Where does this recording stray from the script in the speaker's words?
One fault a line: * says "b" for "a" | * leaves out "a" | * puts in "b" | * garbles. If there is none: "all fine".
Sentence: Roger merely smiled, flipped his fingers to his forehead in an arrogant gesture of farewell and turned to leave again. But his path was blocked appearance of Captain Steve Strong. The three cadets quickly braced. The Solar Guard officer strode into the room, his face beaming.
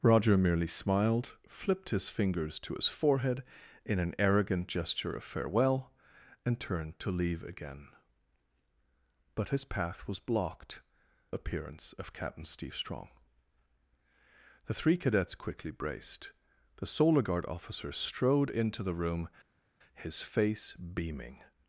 all fine